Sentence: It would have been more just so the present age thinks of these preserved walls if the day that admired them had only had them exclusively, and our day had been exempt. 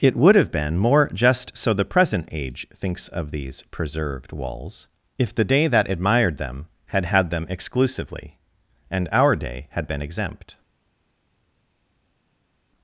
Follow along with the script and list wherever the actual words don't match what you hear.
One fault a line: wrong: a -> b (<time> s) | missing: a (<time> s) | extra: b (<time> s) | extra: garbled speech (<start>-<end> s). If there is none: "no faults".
missing: only (7.0 s)